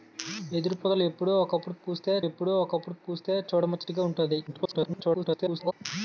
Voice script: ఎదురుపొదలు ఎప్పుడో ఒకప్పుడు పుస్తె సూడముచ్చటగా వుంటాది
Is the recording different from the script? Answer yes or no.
yes